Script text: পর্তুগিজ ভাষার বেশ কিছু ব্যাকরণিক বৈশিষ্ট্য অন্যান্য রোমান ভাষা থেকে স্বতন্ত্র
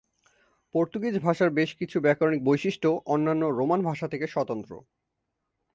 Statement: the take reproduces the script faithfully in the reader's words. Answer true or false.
true